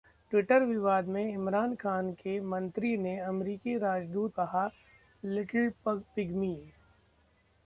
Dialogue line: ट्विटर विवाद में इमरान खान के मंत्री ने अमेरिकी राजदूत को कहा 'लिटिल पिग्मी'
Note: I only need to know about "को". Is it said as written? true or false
false